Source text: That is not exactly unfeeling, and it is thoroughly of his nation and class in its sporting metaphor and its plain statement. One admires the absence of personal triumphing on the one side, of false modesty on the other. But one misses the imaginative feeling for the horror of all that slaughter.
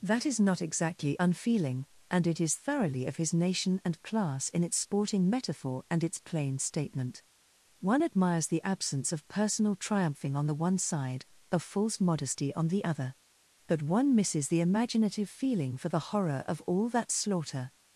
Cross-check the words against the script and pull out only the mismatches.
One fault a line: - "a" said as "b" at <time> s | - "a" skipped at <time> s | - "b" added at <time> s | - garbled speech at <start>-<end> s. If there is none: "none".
none